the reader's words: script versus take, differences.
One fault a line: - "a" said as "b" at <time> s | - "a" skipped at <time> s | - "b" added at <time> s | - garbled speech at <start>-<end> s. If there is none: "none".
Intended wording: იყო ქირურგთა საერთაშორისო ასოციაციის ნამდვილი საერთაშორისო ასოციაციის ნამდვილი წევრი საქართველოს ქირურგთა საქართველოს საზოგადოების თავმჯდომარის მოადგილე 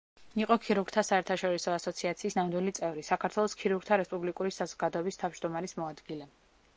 - "საერთაშორისო ასოციაციის ნამდვილი" skipped at 2.7 s
- "საქართველოს" said as "რესპუბლიკური" at 4.0 s